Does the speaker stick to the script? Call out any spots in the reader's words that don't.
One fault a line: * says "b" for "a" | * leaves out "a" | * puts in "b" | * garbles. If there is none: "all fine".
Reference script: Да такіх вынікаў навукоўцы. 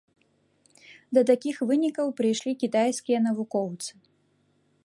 * puts in "прыйшлі кітайскія"